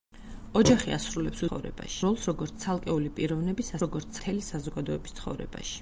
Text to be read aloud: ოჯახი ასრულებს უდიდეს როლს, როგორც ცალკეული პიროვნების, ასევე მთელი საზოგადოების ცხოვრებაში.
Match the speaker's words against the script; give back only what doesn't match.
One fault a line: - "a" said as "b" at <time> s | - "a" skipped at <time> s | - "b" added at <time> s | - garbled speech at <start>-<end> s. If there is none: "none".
- "უდიდეს" said as "ცხოვრებაში" at 1.5 s
- "ასევე" said as "როგორც" at 3.8 s